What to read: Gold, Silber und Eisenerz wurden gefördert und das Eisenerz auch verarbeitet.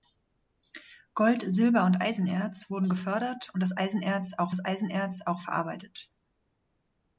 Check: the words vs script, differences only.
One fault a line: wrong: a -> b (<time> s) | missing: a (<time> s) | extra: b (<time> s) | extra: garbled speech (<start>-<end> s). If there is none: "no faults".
extra: das Eisenerz auch (4.5 s)